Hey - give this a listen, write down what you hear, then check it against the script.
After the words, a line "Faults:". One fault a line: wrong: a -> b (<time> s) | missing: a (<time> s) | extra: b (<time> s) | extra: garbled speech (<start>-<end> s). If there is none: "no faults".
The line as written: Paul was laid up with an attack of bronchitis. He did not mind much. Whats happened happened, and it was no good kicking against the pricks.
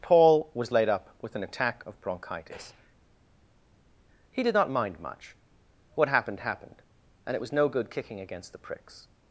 Paul was laid up with an attack of bronchitis. He did not mind much. What happened happened, and it was no good kicking against the pricks.
Faults:
wrong: Whats -> What (5.9 s)